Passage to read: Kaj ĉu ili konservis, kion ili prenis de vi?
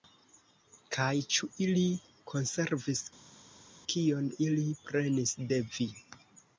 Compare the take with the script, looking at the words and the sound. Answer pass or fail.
pass